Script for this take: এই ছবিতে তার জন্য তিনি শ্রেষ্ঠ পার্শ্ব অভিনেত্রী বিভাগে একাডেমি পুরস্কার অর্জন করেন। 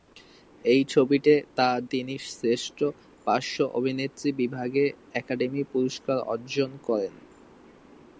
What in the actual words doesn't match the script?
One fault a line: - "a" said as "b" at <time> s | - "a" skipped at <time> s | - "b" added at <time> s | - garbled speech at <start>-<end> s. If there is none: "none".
- "জন্য" skipped at 1.8 s